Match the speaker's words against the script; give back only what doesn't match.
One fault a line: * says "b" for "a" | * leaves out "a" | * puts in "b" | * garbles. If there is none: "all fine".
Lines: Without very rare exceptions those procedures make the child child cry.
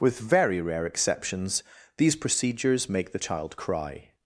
* says "With" for "Without"
* says "these" for "those"
* leaves out "child"